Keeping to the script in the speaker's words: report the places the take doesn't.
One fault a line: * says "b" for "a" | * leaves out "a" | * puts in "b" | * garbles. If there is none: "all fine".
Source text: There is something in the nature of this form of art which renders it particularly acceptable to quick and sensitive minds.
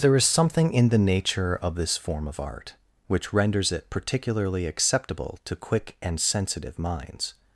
all fine